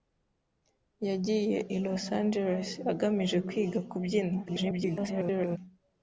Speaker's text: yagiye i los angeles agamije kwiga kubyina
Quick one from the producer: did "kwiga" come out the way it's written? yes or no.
yes